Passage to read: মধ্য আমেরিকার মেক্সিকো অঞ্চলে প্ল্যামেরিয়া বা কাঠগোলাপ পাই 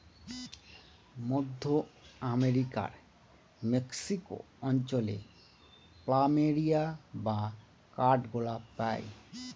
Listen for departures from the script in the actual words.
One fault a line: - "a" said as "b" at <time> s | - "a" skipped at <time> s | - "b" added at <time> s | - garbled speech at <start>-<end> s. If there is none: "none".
none